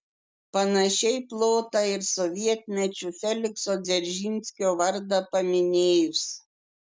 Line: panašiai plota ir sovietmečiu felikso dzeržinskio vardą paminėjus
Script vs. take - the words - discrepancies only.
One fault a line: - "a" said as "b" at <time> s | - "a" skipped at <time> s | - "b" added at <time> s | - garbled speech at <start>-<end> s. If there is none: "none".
none